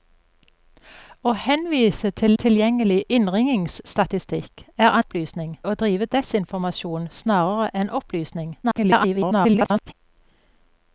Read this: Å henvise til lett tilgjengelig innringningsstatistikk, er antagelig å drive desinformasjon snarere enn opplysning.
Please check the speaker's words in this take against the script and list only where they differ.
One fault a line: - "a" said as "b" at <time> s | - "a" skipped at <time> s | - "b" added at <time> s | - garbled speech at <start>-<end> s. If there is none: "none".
- "lett" skipped at 2.3 s
- "antagelig" said as "opplysning" at 5.0 s
- garbled speech at 8.6-9.9 s